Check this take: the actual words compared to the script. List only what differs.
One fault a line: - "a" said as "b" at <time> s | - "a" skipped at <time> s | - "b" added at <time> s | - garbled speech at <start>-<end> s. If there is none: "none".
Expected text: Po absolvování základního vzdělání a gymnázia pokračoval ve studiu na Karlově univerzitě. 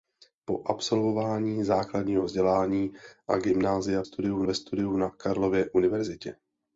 - "pokračoval" said as "studiu" at 4.0 s